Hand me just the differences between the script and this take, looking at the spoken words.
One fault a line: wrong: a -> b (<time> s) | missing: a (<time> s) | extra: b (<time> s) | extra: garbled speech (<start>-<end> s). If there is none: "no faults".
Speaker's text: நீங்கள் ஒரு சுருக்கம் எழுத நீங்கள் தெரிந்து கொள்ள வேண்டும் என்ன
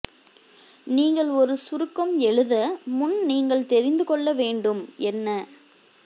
extra: முன் (2.9 s)